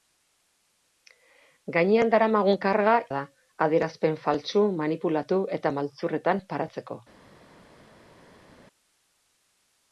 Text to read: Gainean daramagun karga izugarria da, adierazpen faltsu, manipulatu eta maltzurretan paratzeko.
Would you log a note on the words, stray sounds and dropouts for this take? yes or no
yes